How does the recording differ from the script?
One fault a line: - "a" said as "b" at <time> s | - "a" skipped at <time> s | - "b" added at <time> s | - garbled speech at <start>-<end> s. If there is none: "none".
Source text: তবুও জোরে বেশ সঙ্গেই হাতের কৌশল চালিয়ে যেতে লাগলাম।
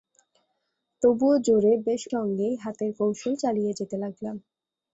none